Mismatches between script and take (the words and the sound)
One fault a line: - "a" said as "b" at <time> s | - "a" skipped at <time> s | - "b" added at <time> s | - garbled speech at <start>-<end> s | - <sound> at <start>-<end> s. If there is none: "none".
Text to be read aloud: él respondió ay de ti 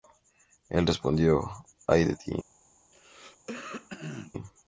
- throat clearing at 2.9-4.3 s